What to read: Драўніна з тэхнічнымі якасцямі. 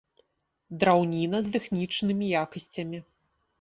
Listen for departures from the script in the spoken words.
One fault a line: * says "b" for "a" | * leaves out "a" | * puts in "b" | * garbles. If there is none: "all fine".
all fine